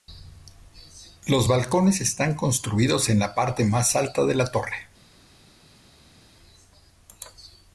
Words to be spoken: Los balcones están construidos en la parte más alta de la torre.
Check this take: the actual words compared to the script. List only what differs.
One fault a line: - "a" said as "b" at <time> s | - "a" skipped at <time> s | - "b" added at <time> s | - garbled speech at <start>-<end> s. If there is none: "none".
none